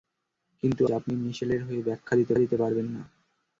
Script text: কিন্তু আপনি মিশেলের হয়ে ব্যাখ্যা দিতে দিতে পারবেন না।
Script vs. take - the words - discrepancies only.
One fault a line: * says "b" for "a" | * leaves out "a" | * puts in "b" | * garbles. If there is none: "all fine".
all fine